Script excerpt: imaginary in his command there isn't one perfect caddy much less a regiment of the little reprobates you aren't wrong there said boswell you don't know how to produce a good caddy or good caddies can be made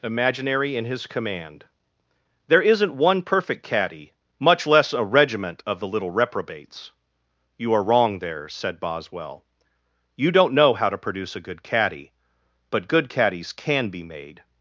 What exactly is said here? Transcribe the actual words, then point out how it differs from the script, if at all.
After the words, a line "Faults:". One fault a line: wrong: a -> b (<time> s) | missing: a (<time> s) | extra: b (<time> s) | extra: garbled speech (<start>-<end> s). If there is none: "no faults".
imaginary in his command there isn't one perfect caddy much less a regiment of the little reprobates you are wrong there said boswell you don't know how to produce a good caddy but good caddies can be made
Faults:
wrong: aren't -> are (7.7 s)
wrong: or -> but (12.7 s)